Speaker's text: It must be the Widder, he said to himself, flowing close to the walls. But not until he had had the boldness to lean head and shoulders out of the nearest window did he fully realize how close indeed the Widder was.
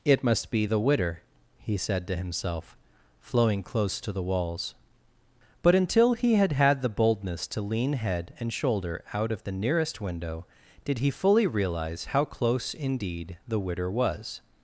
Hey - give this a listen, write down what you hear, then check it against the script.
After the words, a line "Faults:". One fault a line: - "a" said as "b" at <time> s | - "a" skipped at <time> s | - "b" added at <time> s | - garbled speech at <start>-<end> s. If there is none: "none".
It must be the Widder, he said to himself, flowing close to the walls. But until he had had the boldness to lean head and shoulder out of the nearest window did he fully realize how close indeed the Widder was.
Faults:
- "not" skipped at 5.8 s
- "shoulders" said as "shoulder" at 8.5 s